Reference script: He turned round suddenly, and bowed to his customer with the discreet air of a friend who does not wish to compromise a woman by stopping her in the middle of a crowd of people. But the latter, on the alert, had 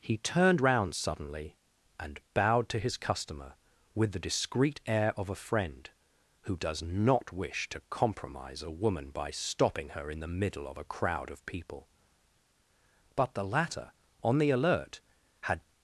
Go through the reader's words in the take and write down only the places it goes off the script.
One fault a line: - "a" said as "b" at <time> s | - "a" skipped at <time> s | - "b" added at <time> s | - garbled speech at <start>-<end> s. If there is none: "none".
none